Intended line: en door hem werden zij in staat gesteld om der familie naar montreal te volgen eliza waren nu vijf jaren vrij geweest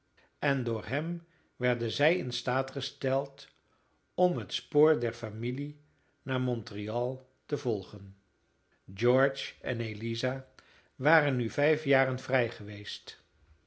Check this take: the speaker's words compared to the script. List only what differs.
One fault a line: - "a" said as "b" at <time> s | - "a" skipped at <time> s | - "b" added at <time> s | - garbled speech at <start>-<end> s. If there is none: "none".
- "het spoor" added at 4.4 s
- "george en" added at 8.9 s